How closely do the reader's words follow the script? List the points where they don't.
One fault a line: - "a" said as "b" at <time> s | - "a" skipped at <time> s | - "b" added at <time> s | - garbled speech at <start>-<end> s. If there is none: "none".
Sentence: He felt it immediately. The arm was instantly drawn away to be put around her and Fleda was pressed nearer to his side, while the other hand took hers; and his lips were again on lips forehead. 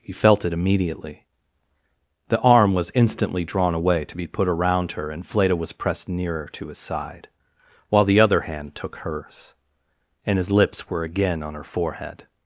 - "lips" said as "her" at 11.5 s